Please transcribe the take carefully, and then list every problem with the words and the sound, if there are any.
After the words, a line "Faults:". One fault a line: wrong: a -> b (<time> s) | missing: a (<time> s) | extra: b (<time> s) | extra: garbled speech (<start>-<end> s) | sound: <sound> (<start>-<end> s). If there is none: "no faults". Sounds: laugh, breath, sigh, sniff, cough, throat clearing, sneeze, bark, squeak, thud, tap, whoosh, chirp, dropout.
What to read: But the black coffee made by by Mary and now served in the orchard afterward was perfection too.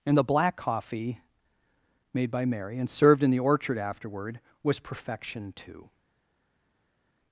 And the black coffee made by Mary and served in the orchard afterward was perfection too.
Faults:
wrong: But -> And (0.1 s)
missing: by (2.5 s)
missing: now (2.9 s)